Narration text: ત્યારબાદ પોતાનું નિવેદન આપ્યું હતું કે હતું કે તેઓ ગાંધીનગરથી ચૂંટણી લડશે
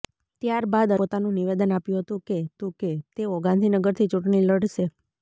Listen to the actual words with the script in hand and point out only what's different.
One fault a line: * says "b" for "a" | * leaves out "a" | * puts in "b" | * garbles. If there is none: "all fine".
all fine